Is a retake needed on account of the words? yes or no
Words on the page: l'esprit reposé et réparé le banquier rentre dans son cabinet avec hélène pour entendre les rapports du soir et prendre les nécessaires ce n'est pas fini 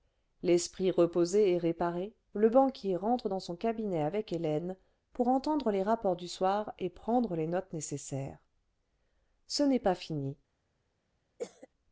yes